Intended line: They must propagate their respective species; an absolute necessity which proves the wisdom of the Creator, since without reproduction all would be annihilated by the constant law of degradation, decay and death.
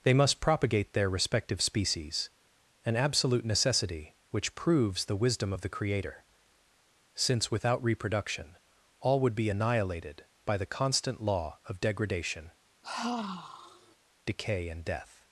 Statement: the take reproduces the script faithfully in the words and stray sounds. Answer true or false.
false